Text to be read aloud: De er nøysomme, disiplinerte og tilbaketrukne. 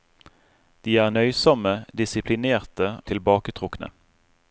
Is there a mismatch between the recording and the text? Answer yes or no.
yes